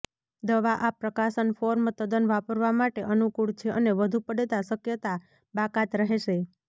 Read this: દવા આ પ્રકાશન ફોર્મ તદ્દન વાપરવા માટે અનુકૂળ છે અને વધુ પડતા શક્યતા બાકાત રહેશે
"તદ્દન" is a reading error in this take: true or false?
false